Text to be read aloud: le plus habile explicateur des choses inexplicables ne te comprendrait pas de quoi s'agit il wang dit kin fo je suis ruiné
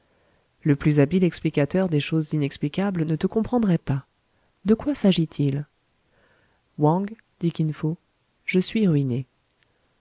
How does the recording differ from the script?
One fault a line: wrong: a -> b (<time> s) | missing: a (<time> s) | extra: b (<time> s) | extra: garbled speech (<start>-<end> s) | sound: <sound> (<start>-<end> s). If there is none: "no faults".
no faults